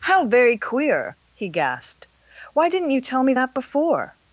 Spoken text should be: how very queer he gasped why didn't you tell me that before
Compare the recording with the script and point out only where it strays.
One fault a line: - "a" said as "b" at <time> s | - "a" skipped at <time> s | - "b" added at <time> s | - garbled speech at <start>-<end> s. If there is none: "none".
none